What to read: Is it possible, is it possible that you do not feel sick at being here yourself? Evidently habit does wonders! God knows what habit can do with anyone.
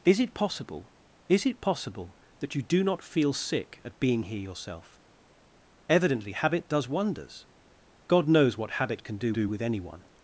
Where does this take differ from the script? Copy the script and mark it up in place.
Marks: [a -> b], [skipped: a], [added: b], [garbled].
Is it possible, is it possible that you do not feel sick at being here yourself? Evidently habit does wonders! God knows what habit can do [added: do] with anyone.